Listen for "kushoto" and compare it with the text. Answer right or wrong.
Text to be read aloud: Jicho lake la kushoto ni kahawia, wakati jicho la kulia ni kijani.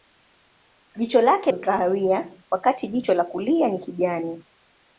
wrong